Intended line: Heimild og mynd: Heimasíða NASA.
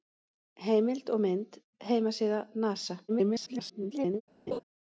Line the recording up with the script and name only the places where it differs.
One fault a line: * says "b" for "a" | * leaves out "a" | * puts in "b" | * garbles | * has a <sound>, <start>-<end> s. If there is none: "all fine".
* garbles
* has a laugh, 4.5-4.6 s